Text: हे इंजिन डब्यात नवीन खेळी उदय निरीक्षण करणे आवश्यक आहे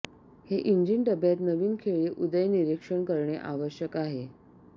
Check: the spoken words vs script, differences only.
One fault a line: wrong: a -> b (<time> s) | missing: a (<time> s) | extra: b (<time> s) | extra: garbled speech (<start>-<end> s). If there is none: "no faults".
no faults